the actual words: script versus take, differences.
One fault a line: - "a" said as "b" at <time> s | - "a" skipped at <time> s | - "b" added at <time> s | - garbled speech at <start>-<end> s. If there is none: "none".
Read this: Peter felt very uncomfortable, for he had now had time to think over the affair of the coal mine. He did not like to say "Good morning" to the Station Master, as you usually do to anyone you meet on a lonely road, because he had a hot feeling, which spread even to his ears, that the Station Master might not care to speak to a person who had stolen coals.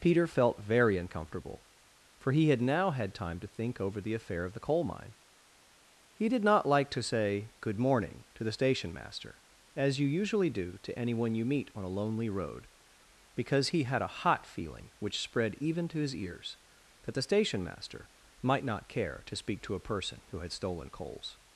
none